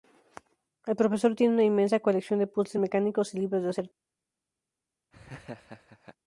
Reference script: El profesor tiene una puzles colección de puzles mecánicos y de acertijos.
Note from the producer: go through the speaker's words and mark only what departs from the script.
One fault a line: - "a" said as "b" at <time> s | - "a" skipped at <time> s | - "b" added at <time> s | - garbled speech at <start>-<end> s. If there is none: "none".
- "puzles" said as "inmensa" at 1.6 s
- "libros" added at 3.4 s